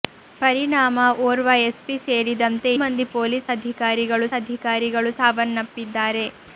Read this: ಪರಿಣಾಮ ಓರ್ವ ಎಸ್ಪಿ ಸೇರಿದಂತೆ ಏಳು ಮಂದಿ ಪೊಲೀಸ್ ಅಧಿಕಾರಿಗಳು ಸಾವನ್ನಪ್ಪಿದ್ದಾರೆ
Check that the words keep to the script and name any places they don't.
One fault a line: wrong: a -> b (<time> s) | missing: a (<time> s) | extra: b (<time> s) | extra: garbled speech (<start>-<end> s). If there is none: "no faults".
missing: ಏಳು (2.7 s)
extra: ಅಧಿಕಾರಿಗಳು (4.4 s)